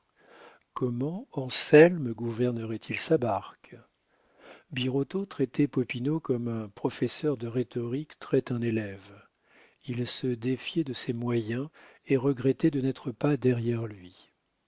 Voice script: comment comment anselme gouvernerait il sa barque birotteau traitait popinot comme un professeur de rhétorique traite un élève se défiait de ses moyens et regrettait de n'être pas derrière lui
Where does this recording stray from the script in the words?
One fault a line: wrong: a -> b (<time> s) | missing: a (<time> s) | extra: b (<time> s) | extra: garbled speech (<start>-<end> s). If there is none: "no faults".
missing: comment (1.3 s)
extra: il (9.9 s)